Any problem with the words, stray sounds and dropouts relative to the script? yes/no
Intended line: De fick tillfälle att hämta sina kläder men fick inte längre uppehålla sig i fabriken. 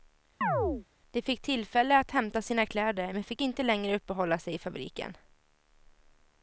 yes